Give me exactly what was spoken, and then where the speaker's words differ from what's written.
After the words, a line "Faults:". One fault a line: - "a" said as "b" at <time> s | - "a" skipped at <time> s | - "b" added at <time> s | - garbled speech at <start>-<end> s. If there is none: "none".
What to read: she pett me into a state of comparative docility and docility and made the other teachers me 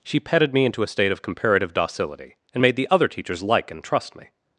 she petted me into a state of comparative docility and made the other teachers like and trust me
Faults:
- "pett" said as "petted" at 0.2 s
- "docility and" skipped at 2.6 s
- "like and trust" added at 3.4 s